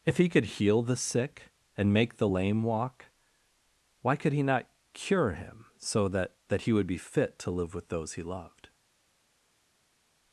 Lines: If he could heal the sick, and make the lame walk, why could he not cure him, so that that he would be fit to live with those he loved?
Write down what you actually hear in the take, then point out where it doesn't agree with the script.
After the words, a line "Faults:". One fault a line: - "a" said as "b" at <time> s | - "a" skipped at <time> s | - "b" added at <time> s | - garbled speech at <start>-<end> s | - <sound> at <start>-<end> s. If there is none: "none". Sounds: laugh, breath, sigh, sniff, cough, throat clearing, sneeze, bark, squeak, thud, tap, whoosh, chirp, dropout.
If he could heal the sick, and make the lame walk, why could he not cure him, so that that he would be fit to live with those he loved?
Faults:
none